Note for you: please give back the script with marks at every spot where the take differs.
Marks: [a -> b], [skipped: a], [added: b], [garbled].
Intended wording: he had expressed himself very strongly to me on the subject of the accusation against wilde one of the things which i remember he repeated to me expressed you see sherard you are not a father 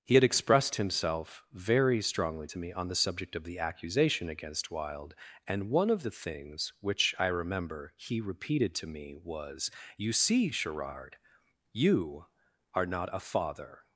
he had expressed himself very strongly to me on the subject of the accusation against wilde [added: and] one of the things which i remember he repeated to me [expressed -> was] you see sherard you are not a father